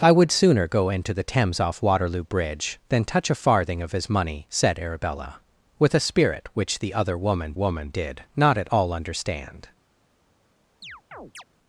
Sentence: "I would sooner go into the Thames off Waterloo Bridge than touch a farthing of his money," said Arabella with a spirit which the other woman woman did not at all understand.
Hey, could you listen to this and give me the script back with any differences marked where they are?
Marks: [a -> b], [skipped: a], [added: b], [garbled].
"I would sooner go into the Thames off Waterloo Bridge than touch a farthing of his money," said Arabella with a spirit which the other woman woman did not at all understand.